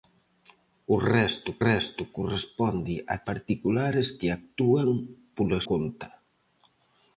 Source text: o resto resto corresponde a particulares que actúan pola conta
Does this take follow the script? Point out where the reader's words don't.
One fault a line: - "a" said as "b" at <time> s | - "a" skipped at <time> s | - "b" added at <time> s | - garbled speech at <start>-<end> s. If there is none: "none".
none